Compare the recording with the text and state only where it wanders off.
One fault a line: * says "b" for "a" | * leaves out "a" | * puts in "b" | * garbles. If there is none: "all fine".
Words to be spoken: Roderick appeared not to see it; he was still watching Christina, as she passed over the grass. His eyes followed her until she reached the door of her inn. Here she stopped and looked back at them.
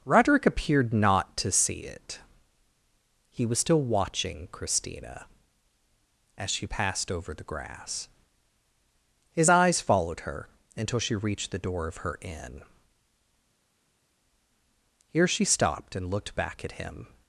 * says "him" for "them"